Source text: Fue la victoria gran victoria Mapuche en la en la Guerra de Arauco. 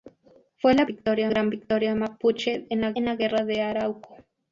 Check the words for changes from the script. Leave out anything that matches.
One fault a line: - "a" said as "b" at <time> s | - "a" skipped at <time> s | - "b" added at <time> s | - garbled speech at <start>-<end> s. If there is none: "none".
none